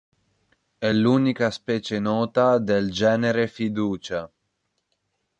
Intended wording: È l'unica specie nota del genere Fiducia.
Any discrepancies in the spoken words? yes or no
no